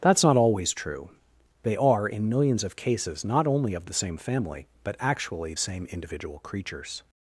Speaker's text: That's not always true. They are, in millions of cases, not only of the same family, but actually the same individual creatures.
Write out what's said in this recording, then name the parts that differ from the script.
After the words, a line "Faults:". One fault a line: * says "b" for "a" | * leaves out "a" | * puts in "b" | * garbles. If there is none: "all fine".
That's not always true. They are, in millions of cases, not only of the same family, but actually same individual creatures.
Faults:
* leaves out "the"